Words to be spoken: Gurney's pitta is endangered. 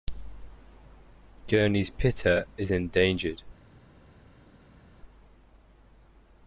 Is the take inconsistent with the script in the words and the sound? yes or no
no